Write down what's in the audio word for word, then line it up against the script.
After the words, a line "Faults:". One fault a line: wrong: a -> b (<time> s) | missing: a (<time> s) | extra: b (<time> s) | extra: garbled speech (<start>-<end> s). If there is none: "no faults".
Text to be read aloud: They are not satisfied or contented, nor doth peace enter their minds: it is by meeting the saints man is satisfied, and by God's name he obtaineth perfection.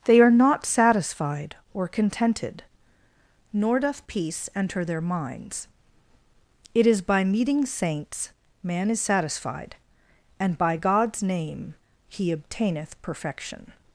They are not satisfied or contented, nor doth peace enter their minds: it is by meeting saints man is satisfied, and by God's name he obtaineth perfection.
Faults:
missing: the (7.7 s)